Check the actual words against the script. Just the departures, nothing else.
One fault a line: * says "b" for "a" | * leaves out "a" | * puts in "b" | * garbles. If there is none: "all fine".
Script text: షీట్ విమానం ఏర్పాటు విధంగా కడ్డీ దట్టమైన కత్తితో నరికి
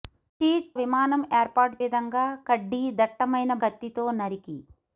all fine